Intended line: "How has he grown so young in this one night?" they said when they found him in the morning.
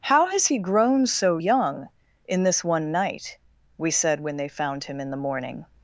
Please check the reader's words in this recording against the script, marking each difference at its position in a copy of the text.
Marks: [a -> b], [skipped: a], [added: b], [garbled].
"How has he grown so young in this one night?" [they -> we] said when they found him in the morning.